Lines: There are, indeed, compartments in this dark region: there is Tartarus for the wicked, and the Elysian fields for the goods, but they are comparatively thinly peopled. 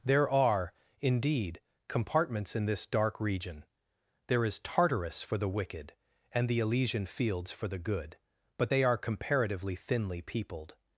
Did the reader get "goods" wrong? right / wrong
wrong